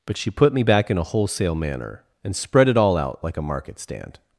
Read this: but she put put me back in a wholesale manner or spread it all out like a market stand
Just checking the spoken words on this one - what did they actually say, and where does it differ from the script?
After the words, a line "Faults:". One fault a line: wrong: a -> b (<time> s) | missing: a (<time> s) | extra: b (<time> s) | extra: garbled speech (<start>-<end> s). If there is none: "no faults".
but she put me back in a wholesale manner and spread it all out like a market stand
Faults:
missing: put (0.5 s)
wrong: or -> and (2.2 s)